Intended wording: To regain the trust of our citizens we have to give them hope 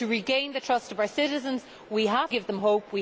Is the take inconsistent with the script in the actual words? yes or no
yes